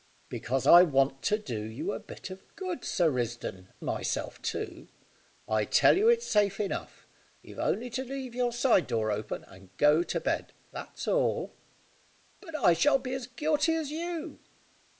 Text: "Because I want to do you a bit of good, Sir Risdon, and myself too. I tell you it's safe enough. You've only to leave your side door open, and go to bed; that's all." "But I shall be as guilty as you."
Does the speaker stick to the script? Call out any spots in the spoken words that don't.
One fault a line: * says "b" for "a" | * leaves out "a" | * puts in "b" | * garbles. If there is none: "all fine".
* leaves out "and"